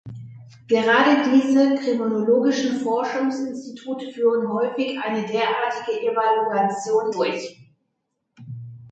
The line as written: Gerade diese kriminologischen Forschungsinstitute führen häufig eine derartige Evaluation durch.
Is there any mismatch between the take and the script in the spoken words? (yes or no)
no